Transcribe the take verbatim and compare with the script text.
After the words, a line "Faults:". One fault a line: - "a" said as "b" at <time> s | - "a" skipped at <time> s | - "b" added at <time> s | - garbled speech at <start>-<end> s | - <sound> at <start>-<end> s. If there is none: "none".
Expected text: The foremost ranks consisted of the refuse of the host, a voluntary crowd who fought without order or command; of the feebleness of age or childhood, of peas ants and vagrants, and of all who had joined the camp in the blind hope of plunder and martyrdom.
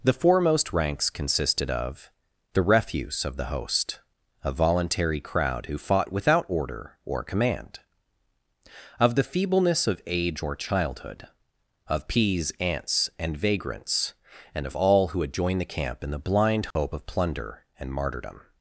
The foremost ranks consisted of the refuse of the host, a voluntary crowd who fought without order or command; of the feebleness of age or childhood, of peas ants and vagrants, and of all who had joined the camp in the blind hope of plunder and martyrdom.
Faults:
- dropout at 16.7-16.8 s